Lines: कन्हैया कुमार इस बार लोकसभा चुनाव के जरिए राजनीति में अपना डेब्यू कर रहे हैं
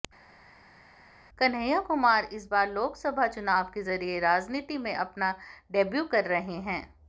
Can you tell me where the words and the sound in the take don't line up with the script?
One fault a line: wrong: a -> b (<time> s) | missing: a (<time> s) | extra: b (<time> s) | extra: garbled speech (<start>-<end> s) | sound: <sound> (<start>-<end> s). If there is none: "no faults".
no faults